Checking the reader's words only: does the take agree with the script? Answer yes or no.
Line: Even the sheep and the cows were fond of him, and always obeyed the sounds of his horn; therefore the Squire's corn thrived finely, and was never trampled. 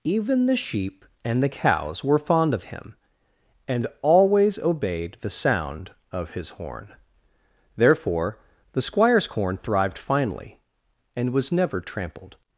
no